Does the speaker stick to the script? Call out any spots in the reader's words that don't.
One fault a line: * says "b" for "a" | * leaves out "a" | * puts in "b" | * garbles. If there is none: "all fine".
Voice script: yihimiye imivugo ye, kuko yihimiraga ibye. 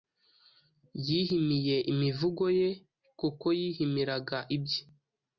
all fine